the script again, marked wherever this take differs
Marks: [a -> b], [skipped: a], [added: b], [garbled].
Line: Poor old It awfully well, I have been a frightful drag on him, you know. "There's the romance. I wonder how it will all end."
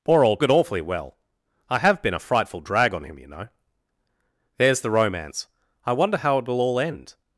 Poor old It awfully well, I have been a frightful drag on him, you know. "There's the romance. I wonder how it will all end."